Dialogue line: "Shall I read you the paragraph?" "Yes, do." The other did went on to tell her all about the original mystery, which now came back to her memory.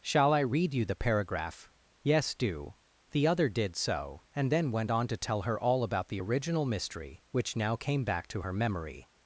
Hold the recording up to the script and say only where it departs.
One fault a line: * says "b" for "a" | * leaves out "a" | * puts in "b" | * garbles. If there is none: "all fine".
* puts in "so and then"